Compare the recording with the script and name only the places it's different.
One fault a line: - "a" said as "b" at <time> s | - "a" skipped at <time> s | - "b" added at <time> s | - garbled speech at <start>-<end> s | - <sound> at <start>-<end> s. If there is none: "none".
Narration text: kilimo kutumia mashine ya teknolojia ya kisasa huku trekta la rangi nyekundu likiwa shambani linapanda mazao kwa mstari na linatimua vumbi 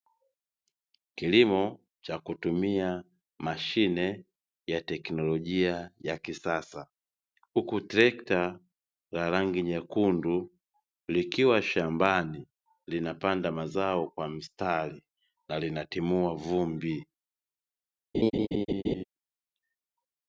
- "cha" added at 2.0 s
- laugh at 18.1-19.0 s